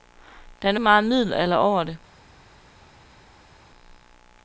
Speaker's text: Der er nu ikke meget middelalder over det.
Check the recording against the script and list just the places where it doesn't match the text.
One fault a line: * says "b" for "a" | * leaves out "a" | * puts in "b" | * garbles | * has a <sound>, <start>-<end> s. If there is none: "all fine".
* leaves out "ikke"